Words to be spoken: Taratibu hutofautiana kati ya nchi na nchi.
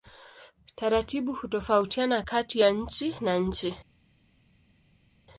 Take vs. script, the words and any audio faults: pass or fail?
pass